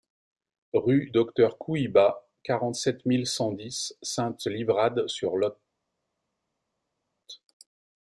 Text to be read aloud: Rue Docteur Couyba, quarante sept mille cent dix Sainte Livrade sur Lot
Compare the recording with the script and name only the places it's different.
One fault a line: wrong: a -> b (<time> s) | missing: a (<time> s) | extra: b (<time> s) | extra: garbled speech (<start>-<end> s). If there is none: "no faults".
no faults